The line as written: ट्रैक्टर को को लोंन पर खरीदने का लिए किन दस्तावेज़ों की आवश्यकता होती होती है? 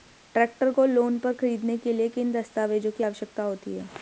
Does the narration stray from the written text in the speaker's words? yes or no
yes